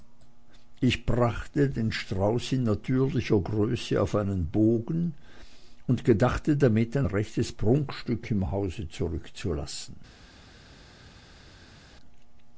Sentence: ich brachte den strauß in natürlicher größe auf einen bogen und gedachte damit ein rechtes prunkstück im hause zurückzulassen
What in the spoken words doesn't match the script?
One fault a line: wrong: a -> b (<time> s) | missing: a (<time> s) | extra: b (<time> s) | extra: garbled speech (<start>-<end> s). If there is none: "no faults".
no faults